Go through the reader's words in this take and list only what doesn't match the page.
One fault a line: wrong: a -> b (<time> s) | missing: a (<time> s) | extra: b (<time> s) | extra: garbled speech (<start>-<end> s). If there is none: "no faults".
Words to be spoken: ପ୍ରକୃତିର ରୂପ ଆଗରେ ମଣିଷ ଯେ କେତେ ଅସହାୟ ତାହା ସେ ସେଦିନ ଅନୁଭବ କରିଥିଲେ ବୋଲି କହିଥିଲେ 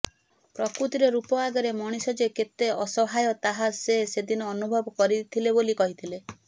no faults